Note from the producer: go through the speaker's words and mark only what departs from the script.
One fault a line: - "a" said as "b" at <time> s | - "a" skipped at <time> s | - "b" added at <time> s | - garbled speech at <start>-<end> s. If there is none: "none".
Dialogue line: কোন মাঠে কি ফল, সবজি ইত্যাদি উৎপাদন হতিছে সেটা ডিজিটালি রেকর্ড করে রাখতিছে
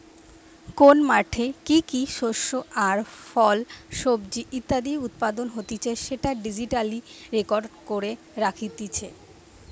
- "কি শস্য আর" added at 1.9 s